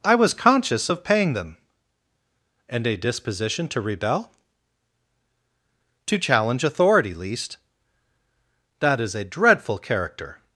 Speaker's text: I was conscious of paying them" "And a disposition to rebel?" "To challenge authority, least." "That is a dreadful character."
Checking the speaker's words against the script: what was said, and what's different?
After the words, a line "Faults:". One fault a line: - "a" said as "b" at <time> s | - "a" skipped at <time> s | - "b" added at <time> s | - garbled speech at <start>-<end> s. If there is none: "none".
I was conscious of paying them" "And a disposition to rebel?" "To challenge authority, least." "That is a dreadful character."
Faults:
none